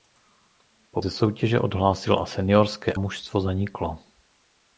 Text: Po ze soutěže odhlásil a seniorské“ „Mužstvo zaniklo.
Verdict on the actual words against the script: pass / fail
pass